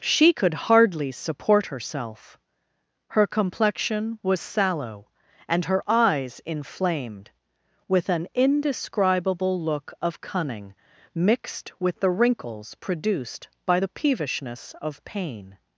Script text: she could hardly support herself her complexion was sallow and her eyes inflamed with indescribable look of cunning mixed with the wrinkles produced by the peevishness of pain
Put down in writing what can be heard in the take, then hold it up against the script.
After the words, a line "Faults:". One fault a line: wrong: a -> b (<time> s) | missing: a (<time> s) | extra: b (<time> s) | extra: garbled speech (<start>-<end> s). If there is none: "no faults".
she could hardly support herself her complexion was sallow and her eyes inflamed with an indescribable look of cunning mixed with the wrinkles produced by the peevishness of pain
Faults:
extra: an (8.1 s)